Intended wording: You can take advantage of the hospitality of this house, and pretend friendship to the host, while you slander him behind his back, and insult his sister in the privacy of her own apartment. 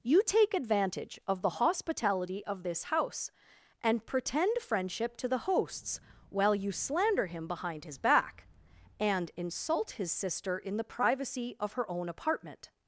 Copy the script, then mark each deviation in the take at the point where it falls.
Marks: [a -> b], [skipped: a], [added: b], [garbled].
You [skipped: can] take advantage of the hospitality of this house, and pretend friendship to the [host, -> hosts] while you slander him behind his back, and insult his sister in the privacy of her own apartment.